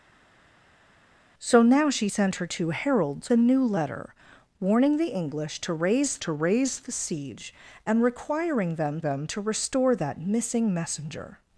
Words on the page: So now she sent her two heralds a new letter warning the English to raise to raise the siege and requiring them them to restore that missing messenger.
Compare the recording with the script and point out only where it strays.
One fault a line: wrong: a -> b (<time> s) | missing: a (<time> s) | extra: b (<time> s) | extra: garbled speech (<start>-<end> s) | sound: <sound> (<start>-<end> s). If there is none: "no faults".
no faults